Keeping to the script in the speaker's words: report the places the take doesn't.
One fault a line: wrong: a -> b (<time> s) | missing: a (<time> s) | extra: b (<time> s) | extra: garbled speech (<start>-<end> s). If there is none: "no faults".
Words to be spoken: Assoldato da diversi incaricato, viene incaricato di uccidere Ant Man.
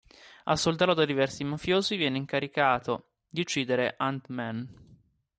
wrong: incaricato -> mafiosi (1.4 s)